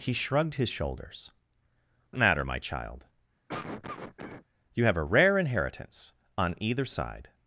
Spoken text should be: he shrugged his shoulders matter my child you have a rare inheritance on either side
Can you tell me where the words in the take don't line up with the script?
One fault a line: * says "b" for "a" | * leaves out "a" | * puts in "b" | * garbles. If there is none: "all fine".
all fine